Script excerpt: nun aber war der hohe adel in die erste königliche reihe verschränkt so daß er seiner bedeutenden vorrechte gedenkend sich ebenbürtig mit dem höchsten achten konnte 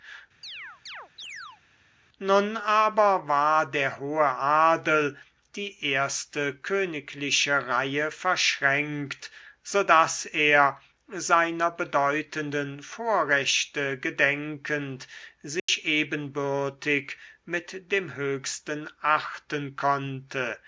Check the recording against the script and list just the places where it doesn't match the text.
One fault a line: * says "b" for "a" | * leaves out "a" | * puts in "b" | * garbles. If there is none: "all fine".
* leaves out "in"